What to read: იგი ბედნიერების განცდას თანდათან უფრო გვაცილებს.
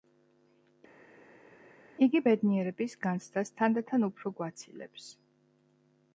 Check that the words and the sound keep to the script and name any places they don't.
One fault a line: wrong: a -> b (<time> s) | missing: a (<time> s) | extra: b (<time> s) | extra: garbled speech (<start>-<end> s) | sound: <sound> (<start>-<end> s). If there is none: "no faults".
no faults